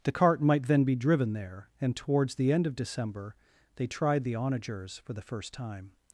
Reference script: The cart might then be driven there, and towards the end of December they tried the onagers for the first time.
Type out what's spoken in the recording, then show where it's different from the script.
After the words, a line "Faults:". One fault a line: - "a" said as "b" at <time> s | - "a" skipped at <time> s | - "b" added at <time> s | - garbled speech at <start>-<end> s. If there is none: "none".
The cart might then be driven there, and towards the end of December they tried the onagers for the first time.
Faults:
none